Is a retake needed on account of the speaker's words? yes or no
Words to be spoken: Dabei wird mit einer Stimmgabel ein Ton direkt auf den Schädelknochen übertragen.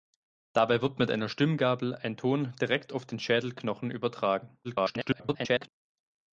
yes